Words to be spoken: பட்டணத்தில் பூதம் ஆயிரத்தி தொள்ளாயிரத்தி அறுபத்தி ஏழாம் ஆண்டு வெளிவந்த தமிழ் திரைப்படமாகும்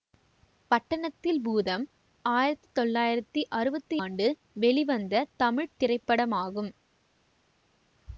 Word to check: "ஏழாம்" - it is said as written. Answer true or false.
false